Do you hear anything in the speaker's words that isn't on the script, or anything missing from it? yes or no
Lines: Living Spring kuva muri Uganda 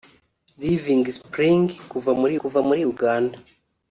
yes